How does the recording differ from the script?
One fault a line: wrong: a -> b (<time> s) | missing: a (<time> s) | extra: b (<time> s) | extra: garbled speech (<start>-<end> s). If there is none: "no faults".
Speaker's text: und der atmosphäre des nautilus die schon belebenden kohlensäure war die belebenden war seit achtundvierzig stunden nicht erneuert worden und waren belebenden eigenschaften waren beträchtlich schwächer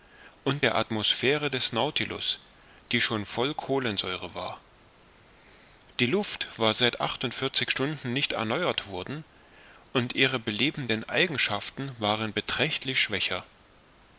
wrong: belebenden -> voll (3.3 s)
wrong: belebenden -> luft (6.1 s)
wrong: waren -> ihre (10.1 s)